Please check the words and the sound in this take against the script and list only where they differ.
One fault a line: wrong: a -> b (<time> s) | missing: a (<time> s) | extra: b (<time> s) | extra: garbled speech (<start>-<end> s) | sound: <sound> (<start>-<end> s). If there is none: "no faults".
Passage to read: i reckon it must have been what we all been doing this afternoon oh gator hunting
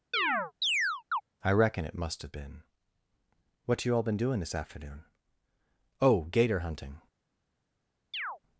sound: chirp (0.1-1.2 s)
wrong: we -> you (3.8 s)
sound: chirp (8.1-8.4 s)